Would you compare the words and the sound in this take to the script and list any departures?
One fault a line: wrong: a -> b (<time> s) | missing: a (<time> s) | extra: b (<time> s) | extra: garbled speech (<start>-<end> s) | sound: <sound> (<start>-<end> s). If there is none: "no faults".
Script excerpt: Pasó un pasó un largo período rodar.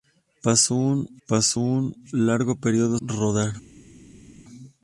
no faults